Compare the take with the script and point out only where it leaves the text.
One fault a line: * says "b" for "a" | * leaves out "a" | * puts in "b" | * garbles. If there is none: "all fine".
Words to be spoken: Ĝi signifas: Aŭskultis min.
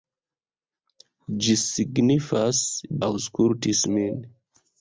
all fine